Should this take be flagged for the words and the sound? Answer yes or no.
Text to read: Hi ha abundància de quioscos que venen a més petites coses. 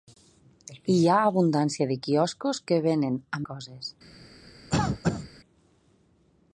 yes